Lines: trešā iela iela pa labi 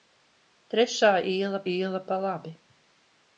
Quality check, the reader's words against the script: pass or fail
pass